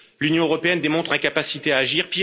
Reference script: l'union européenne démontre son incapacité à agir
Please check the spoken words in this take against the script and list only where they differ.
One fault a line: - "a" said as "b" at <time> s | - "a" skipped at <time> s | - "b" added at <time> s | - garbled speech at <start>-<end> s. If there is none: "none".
- "son" skipped at 1.1 s